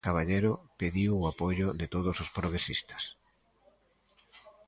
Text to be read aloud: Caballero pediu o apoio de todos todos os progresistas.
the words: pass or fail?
fail